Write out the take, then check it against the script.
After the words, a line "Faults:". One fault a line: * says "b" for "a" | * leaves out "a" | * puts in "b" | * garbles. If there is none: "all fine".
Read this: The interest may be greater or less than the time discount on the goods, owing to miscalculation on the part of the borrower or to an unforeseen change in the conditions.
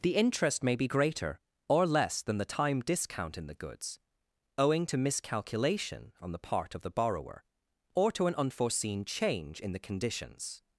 The interest may be greater or less than the time discount in the goods, owing to miscalculation on the part of the borrower or to an unforeseen change in the conditions.
Faults:
* says "in" for "on"